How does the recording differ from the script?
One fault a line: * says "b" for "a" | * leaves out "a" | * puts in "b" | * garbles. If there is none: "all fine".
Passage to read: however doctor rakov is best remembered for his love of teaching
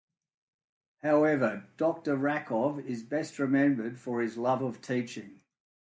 all fine